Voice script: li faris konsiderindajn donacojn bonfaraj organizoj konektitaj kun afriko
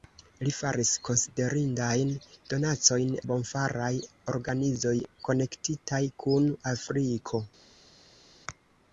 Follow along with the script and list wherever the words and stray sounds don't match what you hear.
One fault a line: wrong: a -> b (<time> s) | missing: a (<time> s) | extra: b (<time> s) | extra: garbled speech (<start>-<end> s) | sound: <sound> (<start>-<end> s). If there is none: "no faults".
no faults